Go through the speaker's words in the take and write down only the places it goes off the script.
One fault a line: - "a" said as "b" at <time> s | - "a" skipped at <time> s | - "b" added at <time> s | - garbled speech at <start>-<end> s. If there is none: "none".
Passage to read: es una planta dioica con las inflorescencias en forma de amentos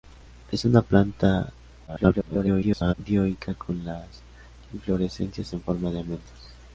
- garbled speech at 1.9-2.9 s